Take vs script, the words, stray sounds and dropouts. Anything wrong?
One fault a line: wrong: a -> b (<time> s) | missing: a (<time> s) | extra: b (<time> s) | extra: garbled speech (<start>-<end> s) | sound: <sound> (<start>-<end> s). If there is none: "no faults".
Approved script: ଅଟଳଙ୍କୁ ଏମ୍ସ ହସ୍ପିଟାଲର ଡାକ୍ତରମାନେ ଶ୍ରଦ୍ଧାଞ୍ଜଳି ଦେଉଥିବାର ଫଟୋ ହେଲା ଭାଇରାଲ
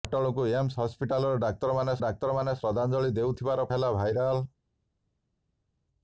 extra: ଡାକ୍ତରମାନେ (2.0 s)
missing: ଫଟୋ (3.7 s)